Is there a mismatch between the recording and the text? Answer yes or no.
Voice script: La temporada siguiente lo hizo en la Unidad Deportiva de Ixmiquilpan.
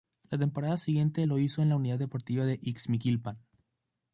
no